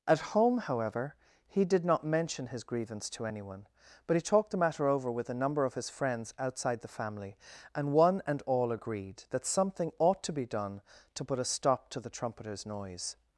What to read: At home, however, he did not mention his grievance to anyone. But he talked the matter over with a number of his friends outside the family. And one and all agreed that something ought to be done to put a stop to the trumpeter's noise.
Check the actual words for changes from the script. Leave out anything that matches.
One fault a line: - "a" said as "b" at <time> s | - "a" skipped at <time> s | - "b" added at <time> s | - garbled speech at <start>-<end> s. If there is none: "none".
none